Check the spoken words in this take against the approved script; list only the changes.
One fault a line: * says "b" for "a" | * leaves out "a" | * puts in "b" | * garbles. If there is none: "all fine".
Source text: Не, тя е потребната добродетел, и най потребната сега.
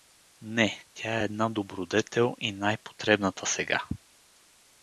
* says "една" for "потребната"